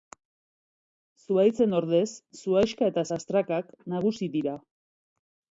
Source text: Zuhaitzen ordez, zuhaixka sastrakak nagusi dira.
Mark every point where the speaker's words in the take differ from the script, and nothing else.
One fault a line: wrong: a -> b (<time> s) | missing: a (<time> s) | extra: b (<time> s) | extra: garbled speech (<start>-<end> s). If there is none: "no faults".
extra: eta (2.9 s)